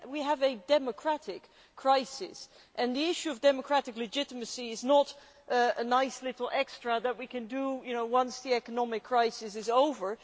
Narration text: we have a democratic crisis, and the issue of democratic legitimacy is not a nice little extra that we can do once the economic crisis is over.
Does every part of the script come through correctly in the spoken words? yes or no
yes